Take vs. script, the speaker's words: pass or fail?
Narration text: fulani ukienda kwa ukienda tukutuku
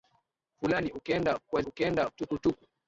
pass